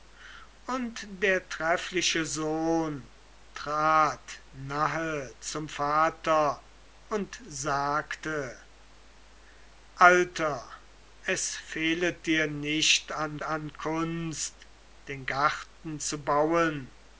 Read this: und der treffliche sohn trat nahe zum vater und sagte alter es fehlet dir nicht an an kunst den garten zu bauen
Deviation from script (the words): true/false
false